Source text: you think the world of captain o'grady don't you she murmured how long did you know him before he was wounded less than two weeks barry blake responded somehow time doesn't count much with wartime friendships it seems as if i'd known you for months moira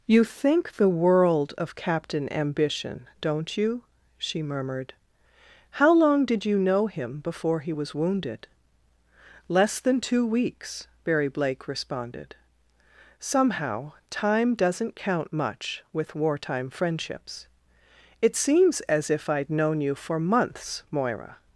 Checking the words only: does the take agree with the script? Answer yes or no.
no